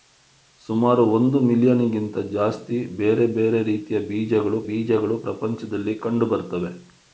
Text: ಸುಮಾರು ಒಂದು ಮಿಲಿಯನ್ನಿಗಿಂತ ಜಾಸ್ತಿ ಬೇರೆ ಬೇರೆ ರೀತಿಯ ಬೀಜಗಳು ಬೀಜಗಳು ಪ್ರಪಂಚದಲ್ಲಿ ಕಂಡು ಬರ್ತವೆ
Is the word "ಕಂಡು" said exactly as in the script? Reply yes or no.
yes